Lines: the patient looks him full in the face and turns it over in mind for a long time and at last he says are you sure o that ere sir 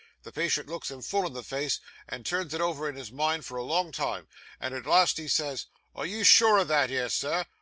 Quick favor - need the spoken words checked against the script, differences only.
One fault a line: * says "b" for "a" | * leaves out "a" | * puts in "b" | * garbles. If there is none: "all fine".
* puts in "his"